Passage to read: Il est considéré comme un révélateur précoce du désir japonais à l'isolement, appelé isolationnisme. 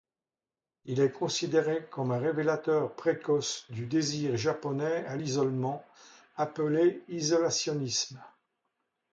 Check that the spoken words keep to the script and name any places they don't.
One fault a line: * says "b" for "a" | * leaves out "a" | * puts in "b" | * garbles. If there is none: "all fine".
all fine